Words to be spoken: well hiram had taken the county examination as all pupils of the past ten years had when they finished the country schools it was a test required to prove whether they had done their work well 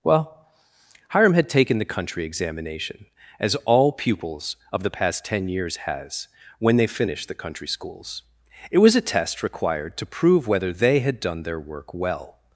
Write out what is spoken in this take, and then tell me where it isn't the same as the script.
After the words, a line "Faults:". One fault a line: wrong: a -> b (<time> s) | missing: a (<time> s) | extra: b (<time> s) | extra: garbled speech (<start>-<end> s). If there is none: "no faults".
well hiram had taken the country examination as all pupils of the past ten years has when they finished the country schools it was a test required to prove whether they had done their work well
Faults:
wrong: county -> country (1.9 s)
wrong: had -> has (5.8 s)